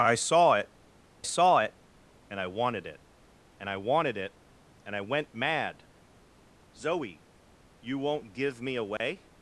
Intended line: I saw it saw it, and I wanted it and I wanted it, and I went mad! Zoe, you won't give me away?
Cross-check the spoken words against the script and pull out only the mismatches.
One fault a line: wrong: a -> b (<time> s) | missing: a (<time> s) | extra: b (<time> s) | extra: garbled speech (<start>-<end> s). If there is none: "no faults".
no faults